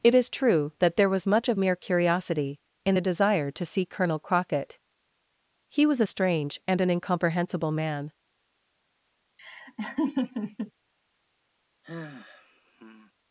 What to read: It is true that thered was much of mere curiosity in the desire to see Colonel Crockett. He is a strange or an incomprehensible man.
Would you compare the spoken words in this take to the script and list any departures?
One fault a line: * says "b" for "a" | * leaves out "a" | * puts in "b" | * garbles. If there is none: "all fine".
* says "there" for "thered"
* says "was" for "is"
* says "and" for "or"